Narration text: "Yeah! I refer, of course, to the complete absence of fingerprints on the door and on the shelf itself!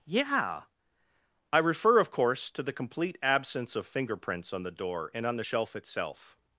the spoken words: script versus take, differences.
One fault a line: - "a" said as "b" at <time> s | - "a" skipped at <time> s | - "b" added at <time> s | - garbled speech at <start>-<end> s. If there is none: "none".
none